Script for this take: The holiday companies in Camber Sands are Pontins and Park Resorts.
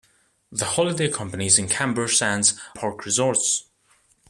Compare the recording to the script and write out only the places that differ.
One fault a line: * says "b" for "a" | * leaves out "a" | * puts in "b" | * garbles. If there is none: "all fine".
* leaves out "are Pontins and"